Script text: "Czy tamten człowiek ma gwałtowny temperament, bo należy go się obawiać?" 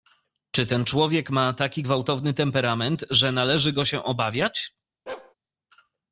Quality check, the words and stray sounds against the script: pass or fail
fail